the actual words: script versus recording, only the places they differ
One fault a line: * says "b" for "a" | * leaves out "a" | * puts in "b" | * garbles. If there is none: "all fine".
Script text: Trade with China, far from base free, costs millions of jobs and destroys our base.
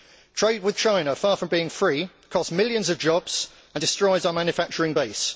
* says "being" for "base"
* puts in "manufacturing"